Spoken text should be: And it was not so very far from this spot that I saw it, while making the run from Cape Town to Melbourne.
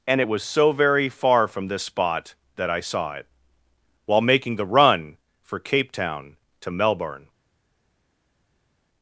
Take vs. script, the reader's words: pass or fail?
fail